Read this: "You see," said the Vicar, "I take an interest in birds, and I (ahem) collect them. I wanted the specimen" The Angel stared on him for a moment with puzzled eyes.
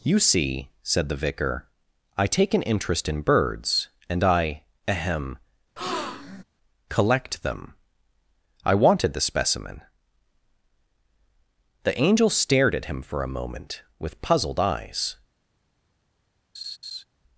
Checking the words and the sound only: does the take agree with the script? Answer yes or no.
no